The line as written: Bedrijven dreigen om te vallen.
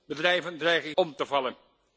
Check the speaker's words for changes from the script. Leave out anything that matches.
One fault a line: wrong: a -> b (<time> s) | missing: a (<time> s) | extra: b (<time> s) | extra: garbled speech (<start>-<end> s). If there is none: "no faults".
no faults